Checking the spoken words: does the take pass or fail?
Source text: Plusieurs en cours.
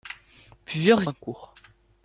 pass